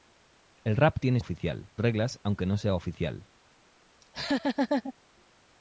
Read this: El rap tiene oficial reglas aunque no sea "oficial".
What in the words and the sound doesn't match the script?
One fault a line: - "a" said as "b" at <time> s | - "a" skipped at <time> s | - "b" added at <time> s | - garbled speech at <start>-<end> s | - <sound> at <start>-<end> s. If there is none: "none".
- laugh at 4.0-4.9 s